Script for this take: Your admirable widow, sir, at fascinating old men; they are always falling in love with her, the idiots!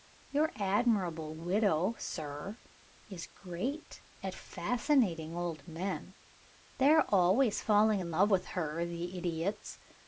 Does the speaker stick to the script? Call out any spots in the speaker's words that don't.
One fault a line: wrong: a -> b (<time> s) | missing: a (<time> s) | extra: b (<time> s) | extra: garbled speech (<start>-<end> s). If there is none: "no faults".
extra: is great (3.1 s)